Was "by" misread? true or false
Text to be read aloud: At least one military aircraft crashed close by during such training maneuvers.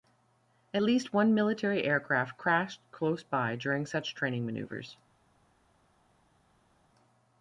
false